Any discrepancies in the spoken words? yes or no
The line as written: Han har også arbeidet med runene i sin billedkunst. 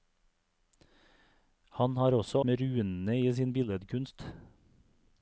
yes